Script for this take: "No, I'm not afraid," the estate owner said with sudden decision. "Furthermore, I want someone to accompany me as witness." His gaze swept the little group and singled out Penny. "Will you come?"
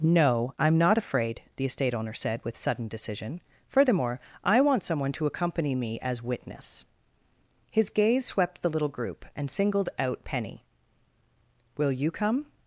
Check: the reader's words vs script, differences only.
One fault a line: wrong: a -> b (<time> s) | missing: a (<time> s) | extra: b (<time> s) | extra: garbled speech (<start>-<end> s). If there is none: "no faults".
no faults